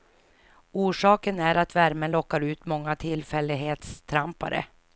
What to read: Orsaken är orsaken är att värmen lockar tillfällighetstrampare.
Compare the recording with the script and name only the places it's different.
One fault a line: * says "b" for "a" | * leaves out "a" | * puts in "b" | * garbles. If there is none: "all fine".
* leaves out "orsaken är"
* puts in "ut många"